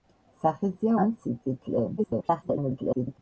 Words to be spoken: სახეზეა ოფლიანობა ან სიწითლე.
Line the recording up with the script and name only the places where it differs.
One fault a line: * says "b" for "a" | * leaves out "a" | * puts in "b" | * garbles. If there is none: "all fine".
* leaves out "ოფლიანობა"
* garbles